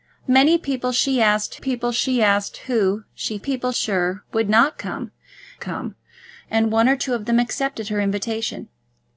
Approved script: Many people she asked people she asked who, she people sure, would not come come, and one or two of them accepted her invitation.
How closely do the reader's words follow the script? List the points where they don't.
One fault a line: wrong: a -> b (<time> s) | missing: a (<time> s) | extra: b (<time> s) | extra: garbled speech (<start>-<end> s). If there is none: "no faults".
no faults